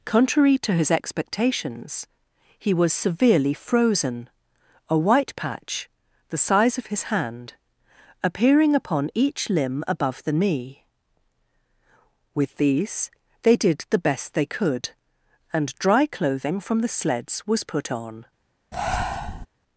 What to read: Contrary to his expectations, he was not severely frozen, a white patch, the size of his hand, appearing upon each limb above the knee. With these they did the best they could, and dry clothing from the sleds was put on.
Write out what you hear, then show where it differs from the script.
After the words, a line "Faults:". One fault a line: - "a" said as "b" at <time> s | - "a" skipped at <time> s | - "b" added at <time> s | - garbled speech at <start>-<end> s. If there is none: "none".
Contrary to his expectations, he was severely frozen, a white patch, the size of his hand, appearing upon each limb above the knee. With these they did the best they could, and dry clothing from the sleds was put on.
Faults:
- "not" skipped at 2.9 s